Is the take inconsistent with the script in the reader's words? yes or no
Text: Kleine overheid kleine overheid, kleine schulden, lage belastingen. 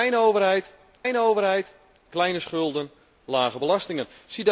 no